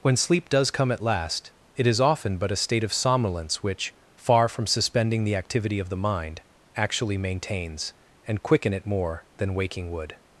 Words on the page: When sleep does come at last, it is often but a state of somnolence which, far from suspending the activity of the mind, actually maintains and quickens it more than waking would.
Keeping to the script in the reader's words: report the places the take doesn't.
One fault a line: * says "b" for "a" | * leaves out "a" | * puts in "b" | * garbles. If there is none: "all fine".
* says "quicken" for "quickens"